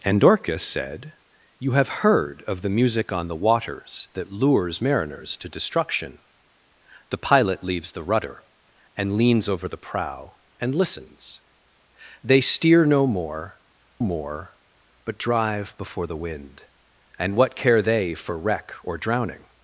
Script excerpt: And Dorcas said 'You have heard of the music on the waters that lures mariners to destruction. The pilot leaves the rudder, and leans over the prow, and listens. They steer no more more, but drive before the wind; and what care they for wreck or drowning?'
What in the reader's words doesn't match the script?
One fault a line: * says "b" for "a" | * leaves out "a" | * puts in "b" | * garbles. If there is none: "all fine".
all fine